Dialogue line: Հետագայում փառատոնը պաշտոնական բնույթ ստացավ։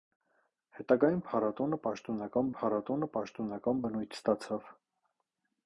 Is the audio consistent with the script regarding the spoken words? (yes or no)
no